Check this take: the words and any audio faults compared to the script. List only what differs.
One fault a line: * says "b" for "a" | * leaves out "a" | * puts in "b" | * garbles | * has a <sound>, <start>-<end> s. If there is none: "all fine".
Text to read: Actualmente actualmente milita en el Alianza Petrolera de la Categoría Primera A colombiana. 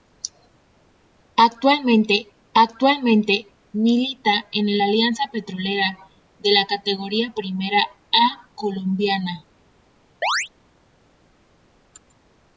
* has a chirp, 10.2-10.5 s